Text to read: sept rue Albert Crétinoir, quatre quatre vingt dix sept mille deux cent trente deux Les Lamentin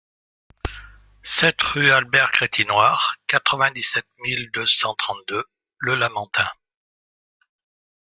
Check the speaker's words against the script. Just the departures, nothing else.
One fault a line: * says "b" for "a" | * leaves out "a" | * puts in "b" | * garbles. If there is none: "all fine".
* leaves out "quatre"
* says "Le" for "Les"